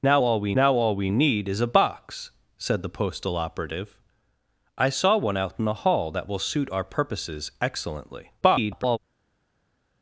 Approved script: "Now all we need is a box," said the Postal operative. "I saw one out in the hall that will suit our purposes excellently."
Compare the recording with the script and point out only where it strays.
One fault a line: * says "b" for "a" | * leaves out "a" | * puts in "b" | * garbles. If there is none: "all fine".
* puts in "now all we"
* garbles